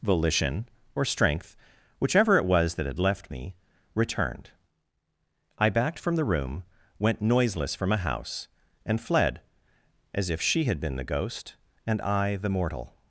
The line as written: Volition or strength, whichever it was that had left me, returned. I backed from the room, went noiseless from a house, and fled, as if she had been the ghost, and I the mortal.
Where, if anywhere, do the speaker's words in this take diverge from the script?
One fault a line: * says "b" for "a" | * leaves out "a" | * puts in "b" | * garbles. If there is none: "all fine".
all fine